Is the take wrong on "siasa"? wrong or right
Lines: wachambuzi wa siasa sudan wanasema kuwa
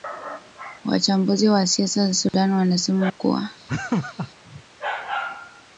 right